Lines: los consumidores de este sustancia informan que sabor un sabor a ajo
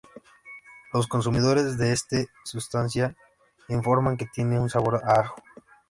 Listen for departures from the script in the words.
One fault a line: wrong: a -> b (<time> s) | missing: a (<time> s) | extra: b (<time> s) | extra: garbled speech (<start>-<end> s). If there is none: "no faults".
wrong: sabor -> tiene (4.3 s)